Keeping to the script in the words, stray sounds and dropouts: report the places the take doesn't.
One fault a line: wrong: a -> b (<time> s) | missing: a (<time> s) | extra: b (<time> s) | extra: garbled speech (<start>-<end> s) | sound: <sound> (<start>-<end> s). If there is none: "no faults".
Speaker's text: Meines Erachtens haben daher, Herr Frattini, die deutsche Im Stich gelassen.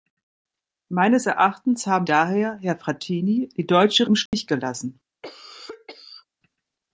sound: dropout (4.3-4.3 s)
sound: cough (5.2-6.3 s)